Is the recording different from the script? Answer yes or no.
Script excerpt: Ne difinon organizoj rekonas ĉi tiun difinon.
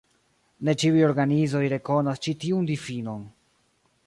yes